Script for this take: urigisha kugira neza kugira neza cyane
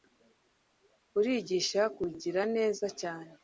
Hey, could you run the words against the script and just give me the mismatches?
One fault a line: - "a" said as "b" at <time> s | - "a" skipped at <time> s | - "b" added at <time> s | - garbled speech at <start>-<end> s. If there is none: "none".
- "kugira neza" skipped at 2.9 s